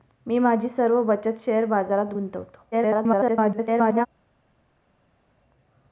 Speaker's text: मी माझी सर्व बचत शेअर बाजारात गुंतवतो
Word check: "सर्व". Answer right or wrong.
right